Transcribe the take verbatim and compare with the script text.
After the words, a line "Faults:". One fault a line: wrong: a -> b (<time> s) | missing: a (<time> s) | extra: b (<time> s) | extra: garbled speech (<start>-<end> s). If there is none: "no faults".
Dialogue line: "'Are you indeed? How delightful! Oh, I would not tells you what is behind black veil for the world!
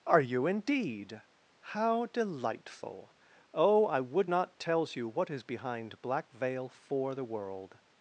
"'Are you indeed? How delightful! Oh, I would not tells you what is behind black veil for the world!
Faults:
no faults